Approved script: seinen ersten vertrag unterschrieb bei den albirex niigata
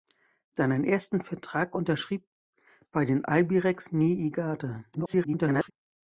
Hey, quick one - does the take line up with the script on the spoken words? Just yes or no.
no